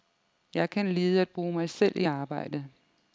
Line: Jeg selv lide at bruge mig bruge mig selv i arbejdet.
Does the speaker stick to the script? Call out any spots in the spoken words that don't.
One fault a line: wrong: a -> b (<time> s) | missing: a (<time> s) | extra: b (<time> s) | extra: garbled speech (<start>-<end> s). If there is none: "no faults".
wrong: selv -> kan (0.7 s)
missing: bruge mig (1.7 s)